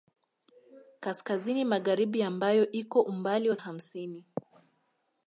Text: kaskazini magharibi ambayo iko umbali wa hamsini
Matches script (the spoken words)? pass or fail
pass